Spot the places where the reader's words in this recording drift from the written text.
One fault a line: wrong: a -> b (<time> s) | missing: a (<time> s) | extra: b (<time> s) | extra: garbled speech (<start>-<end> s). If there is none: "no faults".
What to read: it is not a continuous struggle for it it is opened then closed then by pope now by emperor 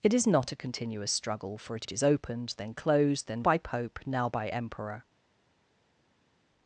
no faults